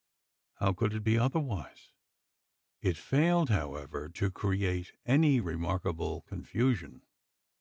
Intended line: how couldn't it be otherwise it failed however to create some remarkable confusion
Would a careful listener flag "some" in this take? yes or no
yes